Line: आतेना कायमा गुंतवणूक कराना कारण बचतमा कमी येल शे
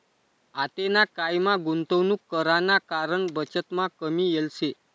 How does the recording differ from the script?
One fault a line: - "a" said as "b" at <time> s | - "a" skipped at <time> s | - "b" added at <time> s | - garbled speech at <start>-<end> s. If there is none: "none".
none